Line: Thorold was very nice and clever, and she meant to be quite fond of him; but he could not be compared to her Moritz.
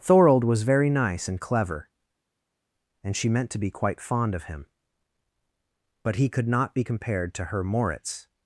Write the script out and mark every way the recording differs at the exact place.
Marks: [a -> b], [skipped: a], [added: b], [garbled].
Thorold was very nice and clever, and she meant to be quite fond of him; but he could not be compared to her Moritz.